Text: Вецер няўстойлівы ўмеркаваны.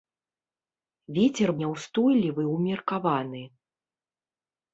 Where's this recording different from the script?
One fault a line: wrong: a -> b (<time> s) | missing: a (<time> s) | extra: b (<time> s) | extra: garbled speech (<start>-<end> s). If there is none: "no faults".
no faults